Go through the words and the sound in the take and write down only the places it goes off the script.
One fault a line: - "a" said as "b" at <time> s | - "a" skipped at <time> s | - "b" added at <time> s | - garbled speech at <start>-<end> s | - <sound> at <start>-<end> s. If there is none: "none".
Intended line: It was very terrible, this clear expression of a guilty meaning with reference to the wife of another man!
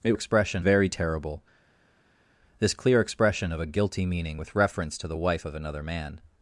- "was" said as "expression" at 0.1 s